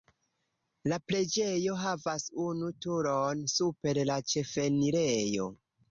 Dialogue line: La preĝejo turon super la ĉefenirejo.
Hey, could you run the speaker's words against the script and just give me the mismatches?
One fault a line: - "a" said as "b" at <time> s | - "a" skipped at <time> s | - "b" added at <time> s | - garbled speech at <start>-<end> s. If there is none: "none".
- "havas unu" added at 1.8 s